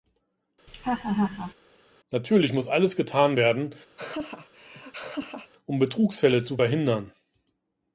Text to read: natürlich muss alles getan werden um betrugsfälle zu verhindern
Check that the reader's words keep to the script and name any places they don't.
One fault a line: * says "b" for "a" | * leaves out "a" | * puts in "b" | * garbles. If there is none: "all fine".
all fine